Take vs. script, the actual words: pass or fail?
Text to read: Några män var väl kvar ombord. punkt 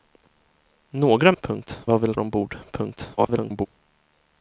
fail